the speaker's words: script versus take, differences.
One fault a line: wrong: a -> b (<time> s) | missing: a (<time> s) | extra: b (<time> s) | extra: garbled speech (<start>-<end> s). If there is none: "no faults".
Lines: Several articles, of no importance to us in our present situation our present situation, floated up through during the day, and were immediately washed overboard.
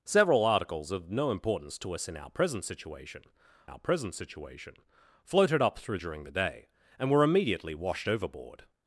no faults